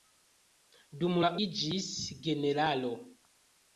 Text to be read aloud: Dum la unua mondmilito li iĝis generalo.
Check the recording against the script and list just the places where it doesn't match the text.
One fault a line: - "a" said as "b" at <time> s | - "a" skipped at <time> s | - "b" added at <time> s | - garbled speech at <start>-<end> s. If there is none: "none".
- "unua mondmilito li" skipped at 1.3 s